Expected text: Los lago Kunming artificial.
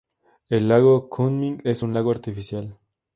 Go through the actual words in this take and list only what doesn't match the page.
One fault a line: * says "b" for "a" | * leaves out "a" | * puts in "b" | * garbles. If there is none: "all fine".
* says "El" for "Los"
* puts in "es un lago"